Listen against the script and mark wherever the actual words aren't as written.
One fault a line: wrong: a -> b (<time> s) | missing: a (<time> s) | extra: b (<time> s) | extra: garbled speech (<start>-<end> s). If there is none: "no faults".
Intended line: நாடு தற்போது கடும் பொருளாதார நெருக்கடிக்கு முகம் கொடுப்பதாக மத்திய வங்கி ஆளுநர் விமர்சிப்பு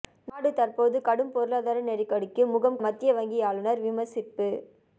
missing: கொடுப்பதாக (2.8 s)